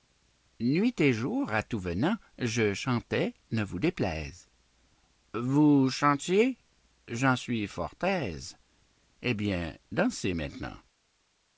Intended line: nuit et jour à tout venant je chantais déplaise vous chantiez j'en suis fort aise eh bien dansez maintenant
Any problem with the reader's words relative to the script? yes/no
yes